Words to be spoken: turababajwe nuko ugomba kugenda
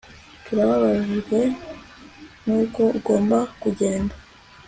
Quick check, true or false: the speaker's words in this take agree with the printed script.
true